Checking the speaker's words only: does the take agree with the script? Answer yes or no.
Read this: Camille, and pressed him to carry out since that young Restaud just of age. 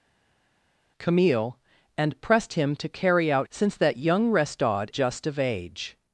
yes